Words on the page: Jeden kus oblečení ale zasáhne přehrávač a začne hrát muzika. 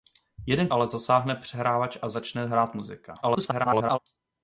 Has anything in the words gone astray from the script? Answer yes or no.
yes